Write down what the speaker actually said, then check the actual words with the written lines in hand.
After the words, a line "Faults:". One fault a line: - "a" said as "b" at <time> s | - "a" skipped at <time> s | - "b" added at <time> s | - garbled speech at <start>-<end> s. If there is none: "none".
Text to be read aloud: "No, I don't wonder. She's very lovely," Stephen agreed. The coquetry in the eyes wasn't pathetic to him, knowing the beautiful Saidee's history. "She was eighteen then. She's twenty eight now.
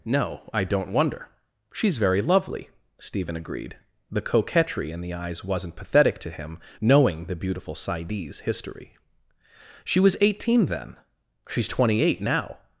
"No, I don't wonder. She's very lovely," Stephen agreed. The coquetry in the eyes wasn't pathetic to him, knowing the beautiful Saidee's history. "She was eighteen then. She's twenty eight now.
Faults:
none